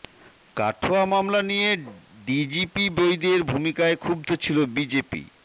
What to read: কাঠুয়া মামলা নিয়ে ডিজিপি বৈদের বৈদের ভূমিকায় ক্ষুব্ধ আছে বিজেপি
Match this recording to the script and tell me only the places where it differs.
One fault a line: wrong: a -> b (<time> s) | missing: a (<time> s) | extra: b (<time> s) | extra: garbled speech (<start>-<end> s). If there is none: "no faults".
missing: বৈদের (3.4 s)
wrong: আছে -> ছিল (4.4 s)